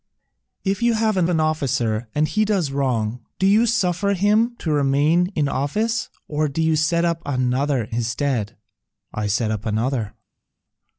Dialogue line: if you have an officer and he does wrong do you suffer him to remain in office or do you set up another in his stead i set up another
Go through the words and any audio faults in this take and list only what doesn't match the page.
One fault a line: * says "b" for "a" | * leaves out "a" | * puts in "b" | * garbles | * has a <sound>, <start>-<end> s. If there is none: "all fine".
* puts in "an"
* leaves out "in"